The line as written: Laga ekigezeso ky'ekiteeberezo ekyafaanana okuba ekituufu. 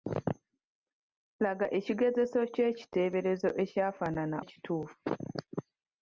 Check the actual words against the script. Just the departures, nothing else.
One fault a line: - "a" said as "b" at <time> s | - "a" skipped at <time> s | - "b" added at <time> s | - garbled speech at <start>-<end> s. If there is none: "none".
- "okuba" skipped at 4.4 s